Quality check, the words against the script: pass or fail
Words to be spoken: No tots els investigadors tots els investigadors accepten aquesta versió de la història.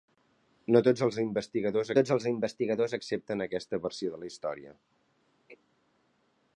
pass